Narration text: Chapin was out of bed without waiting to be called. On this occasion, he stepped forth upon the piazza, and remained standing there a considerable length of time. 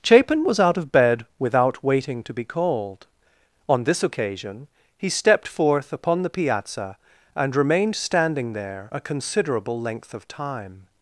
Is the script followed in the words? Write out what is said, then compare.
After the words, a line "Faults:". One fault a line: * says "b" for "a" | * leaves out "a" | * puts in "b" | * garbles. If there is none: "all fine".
Chapin was out of bed without waiting to be called. On this occasion, he stepped forth upon the piazza, and remained standing there a considerable length of time.
Faults:
all fine